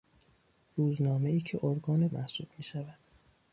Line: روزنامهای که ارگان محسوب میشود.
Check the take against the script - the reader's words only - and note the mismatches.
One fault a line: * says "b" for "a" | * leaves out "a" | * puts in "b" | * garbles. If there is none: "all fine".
all fine